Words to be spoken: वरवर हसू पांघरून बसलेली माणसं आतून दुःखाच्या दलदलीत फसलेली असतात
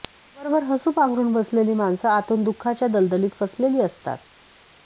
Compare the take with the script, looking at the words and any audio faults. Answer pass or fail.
pass